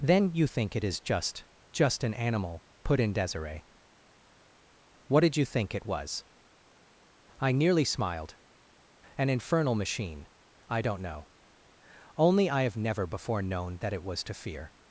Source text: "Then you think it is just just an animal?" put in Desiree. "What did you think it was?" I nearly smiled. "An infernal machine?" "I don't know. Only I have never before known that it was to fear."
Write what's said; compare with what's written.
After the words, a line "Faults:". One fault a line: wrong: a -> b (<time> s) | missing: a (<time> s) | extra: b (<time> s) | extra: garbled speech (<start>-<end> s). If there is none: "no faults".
"Then you think it is just just an animal?" put in Desiree. "What did you think it was?" I nearly smiled. "An infernal machine?" "I don't know. Only I have never before known that it was to fear."
Faults:
no faults